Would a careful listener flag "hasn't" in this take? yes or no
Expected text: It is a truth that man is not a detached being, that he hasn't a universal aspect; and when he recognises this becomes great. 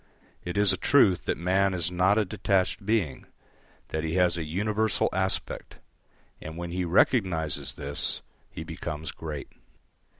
yes